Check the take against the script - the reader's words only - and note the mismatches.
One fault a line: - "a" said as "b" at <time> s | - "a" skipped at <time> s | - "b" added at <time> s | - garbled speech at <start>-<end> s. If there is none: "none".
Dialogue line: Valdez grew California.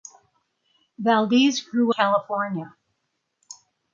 none